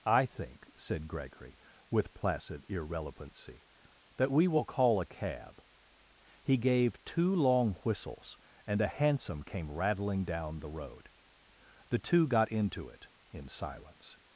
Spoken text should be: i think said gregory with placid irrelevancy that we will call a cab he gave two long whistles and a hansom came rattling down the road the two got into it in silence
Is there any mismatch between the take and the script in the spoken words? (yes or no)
no